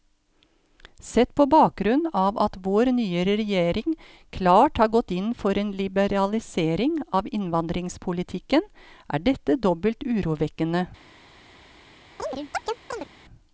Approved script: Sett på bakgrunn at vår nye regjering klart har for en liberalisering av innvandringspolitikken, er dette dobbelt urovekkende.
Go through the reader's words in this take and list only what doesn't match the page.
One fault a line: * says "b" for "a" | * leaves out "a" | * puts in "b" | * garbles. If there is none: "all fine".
* puts in "av"
* puts in "gått inn"